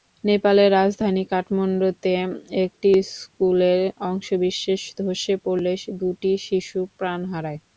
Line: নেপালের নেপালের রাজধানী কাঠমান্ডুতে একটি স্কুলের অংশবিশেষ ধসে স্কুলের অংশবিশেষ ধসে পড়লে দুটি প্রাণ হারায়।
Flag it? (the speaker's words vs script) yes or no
yes